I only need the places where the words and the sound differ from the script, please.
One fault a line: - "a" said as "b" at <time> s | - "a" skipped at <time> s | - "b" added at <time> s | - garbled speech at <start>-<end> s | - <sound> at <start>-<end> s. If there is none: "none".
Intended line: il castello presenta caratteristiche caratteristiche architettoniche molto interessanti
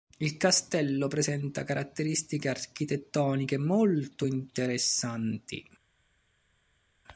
- "caratteristiche" skipped at 2.5 s